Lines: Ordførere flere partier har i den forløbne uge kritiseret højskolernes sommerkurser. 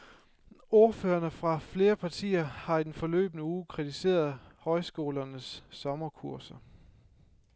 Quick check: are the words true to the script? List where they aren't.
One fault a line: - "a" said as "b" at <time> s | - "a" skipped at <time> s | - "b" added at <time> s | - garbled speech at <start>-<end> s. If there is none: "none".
- "fra" added at 1.3 s